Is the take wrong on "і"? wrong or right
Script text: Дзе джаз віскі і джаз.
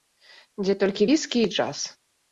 right